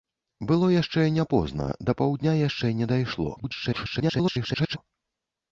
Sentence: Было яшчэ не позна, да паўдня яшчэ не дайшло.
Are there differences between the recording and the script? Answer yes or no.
yes